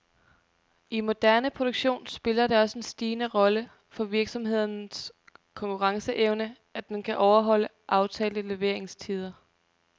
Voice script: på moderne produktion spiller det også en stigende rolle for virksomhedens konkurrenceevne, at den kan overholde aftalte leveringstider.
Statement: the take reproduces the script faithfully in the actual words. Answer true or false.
false